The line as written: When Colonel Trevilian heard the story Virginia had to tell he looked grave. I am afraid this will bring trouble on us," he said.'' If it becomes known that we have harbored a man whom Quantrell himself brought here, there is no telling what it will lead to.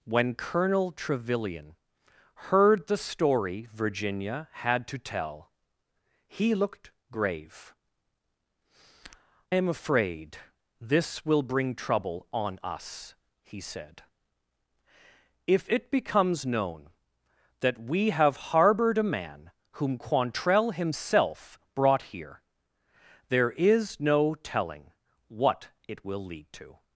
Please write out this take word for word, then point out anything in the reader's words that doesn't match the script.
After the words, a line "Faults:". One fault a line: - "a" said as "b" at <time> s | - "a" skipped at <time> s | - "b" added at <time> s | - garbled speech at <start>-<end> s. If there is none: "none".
When Colonel Trevilian heard the story Virginia had to tell he looked grave. am afraid this will bring trouble on us," he said.'' If it becomes known that we have harbored a man whom Quantrell himself brought here, there is no telling what it will lead to.
Faults:
- "I" skipped at 7.8 s